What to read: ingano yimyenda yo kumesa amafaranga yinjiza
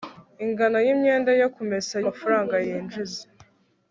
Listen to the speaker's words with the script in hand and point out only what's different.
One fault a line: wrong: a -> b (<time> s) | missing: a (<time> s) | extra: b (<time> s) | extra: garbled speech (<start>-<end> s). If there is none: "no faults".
no faults